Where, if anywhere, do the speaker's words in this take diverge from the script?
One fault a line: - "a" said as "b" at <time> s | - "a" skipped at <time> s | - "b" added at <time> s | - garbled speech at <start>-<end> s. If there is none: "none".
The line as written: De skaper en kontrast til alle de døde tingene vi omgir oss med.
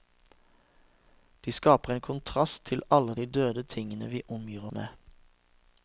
- "oss" skipped at 4.6 s